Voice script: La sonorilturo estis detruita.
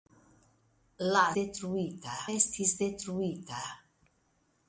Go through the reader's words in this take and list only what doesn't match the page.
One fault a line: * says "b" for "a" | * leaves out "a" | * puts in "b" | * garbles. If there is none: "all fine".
* says "detruita" for "sonorilturo"